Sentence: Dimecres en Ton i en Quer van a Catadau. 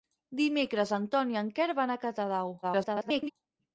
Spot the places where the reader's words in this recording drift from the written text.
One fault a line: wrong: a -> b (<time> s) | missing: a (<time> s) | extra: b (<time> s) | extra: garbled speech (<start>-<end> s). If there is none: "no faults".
extra: garbled speech (2.6-3.3 s)